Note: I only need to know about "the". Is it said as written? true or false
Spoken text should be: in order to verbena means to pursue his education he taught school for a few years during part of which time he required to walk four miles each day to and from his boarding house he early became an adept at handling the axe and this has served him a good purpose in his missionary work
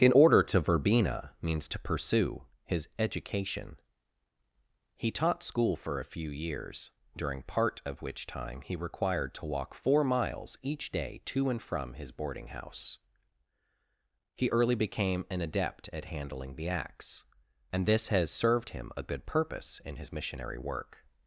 true